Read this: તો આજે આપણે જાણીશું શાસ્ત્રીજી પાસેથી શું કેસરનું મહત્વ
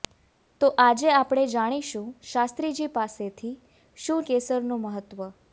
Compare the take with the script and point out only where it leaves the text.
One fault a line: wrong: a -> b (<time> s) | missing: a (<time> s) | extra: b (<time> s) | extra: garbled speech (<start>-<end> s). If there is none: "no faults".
no faults